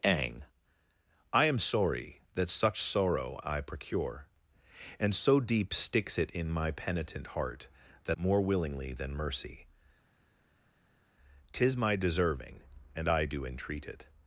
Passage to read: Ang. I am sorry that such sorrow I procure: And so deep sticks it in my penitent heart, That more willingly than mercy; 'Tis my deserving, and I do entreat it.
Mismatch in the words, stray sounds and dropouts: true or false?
false